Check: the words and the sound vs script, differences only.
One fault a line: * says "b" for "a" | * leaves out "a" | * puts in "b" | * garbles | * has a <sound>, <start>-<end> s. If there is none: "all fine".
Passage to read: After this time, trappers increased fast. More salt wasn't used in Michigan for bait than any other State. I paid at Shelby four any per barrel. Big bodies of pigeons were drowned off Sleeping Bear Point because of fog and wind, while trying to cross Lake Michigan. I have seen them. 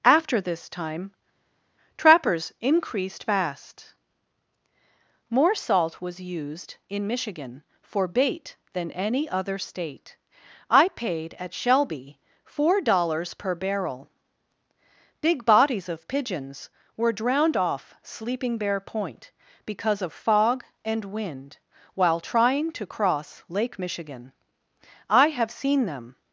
* says "was" for "wasn't"
* says "dollars" for "any"